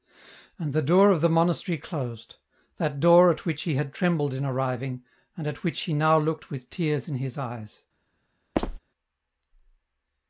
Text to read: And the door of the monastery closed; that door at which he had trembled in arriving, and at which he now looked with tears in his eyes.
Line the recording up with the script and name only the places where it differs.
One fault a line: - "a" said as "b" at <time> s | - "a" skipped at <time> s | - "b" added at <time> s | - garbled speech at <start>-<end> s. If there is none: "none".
none